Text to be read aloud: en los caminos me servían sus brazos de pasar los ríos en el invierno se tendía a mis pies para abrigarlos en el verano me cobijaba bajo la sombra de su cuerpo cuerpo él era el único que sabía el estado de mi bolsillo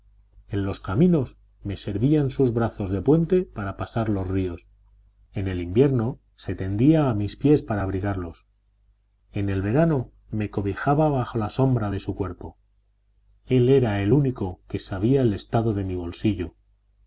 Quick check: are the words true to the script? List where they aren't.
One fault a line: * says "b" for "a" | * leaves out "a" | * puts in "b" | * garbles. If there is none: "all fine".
* puts in "puente para"
* leaves out "cuerpo"